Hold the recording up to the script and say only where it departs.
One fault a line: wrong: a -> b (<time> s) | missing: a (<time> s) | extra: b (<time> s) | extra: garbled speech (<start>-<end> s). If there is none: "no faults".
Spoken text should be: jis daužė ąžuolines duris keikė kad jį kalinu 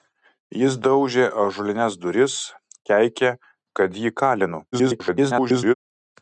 extra: garbled speech (4.7-5.7 s)